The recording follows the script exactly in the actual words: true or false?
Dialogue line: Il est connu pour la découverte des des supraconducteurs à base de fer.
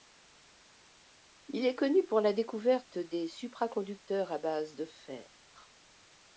false